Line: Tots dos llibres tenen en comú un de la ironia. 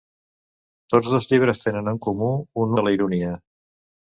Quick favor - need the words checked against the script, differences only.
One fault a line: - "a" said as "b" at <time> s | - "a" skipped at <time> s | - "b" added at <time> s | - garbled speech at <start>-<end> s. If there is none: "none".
none